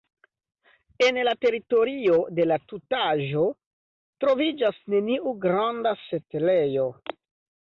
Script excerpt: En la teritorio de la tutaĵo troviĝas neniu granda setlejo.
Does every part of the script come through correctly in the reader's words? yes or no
yes